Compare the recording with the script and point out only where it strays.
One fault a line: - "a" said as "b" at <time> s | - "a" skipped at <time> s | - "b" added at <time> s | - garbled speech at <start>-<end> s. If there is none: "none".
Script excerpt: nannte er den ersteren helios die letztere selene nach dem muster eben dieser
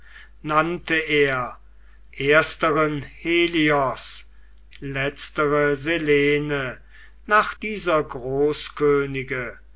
- "den" skipped at 1.6 s
- "die" skipped at 4.3 s
- "dem muster eben" skipped at 7.5 s